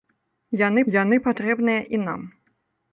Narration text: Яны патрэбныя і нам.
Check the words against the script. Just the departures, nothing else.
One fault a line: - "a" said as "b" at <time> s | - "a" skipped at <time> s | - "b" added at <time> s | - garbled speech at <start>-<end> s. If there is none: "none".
- "яны" added at 1.0 s